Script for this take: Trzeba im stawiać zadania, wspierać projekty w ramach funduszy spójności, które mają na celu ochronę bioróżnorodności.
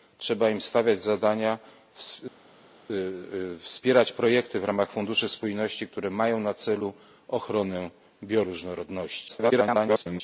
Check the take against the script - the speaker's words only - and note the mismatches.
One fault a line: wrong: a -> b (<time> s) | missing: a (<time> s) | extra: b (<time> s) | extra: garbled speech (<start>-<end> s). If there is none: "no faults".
extra: garbled speech (9.3-10.2 s)